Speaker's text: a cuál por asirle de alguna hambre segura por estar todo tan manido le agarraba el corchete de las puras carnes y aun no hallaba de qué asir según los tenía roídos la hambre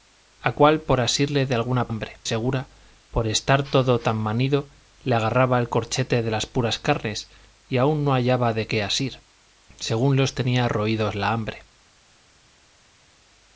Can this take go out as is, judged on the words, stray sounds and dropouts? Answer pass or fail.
pass